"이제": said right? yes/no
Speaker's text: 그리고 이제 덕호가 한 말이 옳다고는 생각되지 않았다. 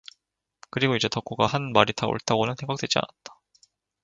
yes